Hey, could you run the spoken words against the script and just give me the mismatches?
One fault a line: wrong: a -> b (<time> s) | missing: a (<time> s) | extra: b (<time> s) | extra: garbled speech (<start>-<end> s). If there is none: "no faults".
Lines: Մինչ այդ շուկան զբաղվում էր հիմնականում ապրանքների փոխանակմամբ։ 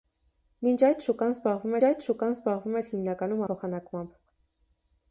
extra: այդ շուկան զբաղվում (1.9 s)
missing: ապրանքների (3.4 s)